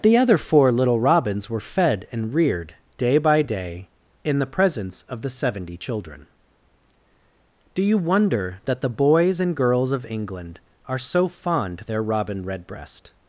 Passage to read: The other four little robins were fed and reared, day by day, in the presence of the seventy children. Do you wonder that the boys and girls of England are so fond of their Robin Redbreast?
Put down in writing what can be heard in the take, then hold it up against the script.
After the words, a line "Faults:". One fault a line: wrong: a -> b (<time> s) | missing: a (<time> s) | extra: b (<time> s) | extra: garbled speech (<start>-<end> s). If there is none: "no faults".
The other four little robins were fed and reared, day by day, in the presence of the seventy children. Do you wonder that the boys and girls of England are so fond their Robin Redbreast?
Faults:
missing: of (11.8 s)